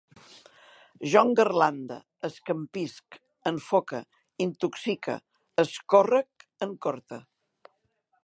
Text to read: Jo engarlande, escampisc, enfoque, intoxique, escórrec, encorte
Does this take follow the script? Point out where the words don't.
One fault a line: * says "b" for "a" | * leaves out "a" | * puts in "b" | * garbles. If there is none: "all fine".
all fine